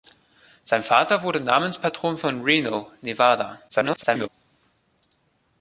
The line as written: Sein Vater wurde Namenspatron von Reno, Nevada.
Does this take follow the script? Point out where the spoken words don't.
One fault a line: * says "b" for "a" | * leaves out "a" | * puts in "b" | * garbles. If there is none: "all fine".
* garbles